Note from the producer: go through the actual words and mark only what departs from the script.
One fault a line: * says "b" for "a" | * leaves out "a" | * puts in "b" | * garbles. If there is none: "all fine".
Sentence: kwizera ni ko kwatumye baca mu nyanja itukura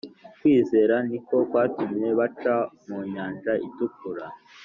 all fine